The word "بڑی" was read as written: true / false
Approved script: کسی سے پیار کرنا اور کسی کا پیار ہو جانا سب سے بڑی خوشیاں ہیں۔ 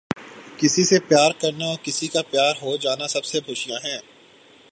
false